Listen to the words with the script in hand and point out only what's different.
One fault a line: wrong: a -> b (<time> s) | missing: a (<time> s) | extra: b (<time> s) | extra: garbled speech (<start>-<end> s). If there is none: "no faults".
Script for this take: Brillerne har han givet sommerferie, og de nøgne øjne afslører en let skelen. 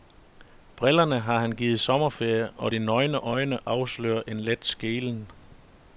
no faults